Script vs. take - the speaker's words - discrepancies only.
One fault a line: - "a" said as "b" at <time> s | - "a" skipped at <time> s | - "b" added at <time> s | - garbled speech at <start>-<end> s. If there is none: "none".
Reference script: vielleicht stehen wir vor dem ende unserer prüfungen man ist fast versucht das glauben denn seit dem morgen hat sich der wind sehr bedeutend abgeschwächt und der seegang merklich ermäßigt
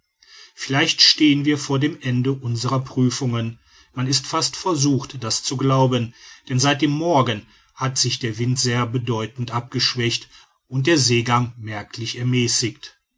- "zu" added at 5.4 s